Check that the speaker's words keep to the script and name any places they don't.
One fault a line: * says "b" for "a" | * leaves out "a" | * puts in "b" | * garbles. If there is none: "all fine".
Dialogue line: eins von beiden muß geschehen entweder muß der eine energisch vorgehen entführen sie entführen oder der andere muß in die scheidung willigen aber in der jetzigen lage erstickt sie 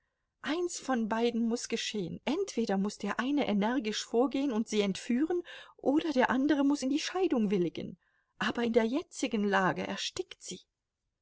* says "und" for "entführen"